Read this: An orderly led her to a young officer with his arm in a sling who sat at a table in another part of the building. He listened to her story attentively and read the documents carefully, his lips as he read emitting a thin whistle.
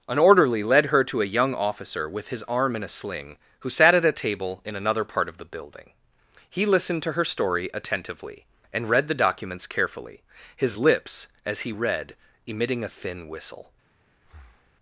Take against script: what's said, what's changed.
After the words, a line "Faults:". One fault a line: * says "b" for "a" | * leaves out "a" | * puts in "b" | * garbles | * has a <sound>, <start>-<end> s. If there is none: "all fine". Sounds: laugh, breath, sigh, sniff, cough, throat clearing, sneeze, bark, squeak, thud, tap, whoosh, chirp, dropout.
An orderly led her to a young officer with his arm in a sling who sat at a table in another part of the building. He listened to her story attentively and read the documents carefully, his lips as he read emitting a thin whistle.
Faults:
* has a breath, 14.2-14.7 s